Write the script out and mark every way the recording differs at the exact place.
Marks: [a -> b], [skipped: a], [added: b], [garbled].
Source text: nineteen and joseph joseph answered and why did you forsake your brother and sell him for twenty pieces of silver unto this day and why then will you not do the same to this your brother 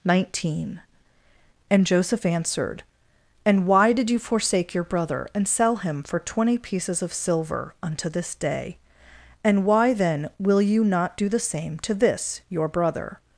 nineteen and joseph [skipped: joseph] answered and why did you forsake your brother and sell him for twenty pieces of silver unto this day and why then will you not do the same to this your brother